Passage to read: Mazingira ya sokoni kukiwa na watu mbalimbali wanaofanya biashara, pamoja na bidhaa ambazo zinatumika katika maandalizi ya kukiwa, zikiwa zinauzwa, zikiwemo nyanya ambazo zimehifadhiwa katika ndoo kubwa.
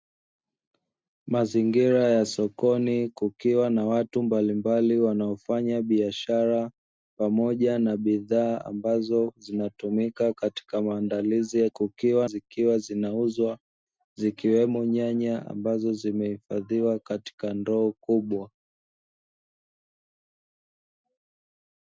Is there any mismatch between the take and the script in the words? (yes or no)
no